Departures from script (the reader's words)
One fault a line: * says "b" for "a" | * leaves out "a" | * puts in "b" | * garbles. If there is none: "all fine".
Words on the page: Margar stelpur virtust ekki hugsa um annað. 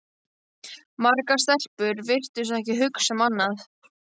all fine